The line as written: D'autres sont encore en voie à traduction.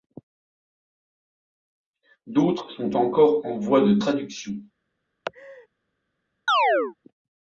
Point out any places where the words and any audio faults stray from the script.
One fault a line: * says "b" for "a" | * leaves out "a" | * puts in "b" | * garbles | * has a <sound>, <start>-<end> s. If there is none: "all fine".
* says "de" for "à"
* has a laugh, 5.2-5.7 s
* has a chirp, 6.5-6.9 s